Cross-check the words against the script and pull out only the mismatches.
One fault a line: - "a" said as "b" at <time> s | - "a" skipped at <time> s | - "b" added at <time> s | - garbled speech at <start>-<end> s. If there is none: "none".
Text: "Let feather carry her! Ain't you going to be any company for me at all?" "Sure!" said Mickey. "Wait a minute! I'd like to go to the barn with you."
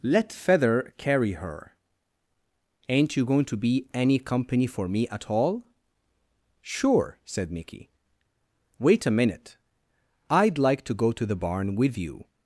none